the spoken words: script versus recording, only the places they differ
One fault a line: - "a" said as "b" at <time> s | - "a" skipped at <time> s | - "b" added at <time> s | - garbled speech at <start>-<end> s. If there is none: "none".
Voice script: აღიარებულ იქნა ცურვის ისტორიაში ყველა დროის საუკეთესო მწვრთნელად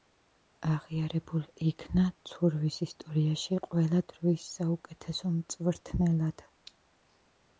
none